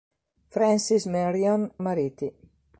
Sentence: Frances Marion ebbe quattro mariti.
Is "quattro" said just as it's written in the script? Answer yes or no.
no